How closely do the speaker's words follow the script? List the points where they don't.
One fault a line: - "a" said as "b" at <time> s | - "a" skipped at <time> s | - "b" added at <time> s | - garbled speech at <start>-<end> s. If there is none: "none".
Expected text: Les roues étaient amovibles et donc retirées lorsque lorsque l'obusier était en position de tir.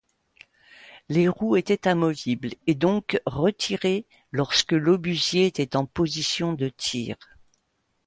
- "lorsque" skipped at 4.7 s